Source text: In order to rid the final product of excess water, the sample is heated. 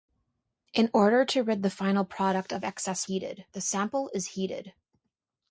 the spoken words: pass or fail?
fail